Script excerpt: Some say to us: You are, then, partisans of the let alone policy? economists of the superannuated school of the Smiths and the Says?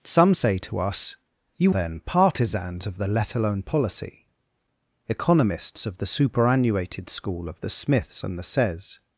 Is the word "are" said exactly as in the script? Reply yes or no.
no